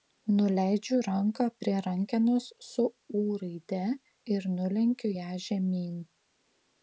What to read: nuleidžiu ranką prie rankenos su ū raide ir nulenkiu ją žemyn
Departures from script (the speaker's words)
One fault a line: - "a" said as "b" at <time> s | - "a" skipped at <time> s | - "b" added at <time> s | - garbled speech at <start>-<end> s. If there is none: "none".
none